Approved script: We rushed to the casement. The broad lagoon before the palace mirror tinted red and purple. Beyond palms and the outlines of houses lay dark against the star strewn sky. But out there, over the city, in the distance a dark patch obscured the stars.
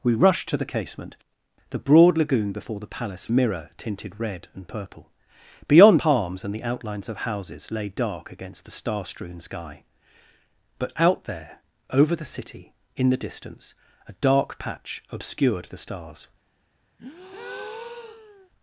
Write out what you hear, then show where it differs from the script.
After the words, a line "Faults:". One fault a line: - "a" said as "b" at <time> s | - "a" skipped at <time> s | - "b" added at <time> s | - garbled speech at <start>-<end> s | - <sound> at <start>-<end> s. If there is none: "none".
We rushed to the casement. The broad lagoon before the palace mirror tinted red and purple. Beyond palms and the outlines of houses lay dark against the star strewn sky. But out there, over the city, in the distance a dark patch obscured the stars.
Faults:
- breath at 17.0-18.5 s